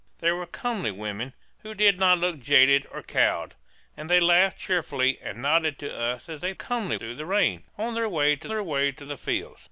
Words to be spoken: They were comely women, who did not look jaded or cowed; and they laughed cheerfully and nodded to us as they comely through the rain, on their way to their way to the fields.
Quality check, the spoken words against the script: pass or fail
pass